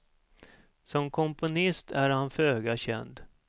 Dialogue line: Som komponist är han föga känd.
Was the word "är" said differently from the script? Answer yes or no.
no